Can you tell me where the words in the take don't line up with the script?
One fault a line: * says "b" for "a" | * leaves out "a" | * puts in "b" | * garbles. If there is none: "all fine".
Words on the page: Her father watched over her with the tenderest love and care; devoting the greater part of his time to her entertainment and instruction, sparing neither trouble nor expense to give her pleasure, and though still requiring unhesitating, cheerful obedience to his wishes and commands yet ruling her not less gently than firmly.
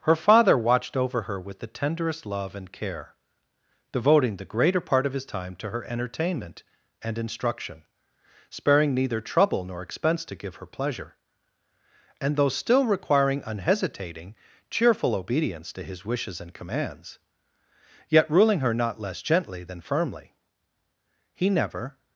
* puts in "He never"